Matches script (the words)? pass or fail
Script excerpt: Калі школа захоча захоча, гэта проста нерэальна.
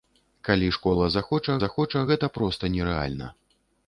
pass